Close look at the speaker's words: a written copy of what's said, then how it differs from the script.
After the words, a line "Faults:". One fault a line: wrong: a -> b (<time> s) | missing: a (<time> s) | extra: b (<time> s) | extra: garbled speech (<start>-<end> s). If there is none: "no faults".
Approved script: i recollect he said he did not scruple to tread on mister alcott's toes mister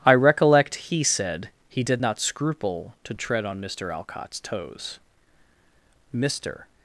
i recollect he said he did not scruple to tread on mister alcott's toes mister
Faults:
no faults